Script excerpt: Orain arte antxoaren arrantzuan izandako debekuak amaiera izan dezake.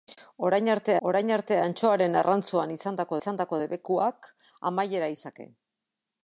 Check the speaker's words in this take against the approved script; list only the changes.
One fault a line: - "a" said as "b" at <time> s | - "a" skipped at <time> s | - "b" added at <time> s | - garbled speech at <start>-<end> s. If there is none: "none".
- "orain arte" added at 1.1 s
- "izandako" added at 3.2 s
- "izan" skipped at 5.1 s